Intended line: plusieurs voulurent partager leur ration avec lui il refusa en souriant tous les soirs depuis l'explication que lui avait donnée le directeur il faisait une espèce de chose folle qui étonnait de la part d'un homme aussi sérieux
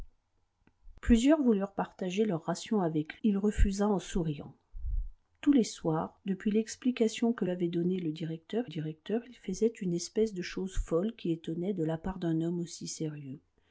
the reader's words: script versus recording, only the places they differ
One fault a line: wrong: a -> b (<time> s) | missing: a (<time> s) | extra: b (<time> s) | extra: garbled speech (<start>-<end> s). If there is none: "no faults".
missing: lui (3.2 s)
missing: lui (7.5 s)
extra: directeur (8.7 s)